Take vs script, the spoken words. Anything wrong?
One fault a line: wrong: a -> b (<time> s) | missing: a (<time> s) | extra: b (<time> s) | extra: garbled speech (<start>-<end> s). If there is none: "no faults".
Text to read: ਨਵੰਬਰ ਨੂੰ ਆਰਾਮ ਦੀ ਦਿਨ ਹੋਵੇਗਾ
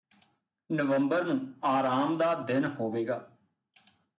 wrong: ਦੀ -> ਦਾ (2.2 s)